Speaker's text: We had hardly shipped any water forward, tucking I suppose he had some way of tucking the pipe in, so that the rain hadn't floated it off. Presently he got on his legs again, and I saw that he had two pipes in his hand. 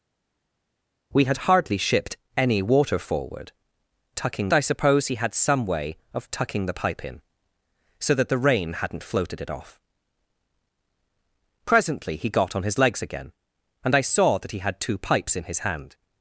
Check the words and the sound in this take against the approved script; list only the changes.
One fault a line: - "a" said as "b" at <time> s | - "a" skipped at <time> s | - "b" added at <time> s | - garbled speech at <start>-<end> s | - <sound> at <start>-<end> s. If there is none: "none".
none